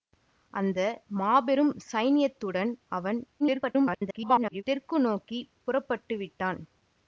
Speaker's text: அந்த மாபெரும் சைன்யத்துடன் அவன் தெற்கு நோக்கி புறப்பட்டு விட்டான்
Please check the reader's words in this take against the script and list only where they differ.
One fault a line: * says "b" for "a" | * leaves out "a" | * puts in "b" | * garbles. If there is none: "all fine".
* garbles